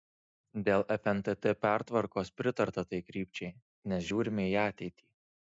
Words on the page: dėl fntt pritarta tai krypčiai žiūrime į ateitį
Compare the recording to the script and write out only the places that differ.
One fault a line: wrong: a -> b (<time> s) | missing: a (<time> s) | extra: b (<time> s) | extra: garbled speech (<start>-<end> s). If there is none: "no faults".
extra: pertvarkos (1.6 s)
extra: nes (3.9 s)